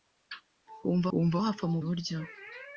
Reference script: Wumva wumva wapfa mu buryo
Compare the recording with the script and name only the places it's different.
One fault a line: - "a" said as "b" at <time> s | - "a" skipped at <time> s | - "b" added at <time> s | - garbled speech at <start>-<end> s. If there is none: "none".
none